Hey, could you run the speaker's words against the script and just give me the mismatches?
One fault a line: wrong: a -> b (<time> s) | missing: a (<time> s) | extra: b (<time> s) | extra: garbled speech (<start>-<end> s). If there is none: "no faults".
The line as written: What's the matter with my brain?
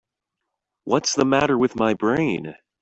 no faults